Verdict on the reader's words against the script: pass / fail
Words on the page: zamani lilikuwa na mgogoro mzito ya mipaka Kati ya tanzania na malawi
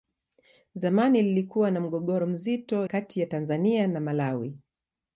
fail